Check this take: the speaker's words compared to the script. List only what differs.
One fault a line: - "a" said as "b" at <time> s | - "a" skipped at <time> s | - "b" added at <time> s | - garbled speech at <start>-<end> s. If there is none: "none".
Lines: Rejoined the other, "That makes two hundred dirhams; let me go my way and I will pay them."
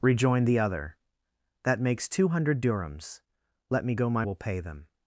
- "way and I" skipped at 4.2 s